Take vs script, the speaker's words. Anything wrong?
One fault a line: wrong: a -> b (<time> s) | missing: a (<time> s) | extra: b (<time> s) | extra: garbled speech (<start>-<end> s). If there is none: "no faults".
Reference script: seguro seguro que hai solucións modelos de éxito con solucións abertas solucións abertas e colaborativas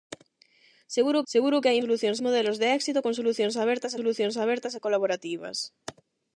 no faults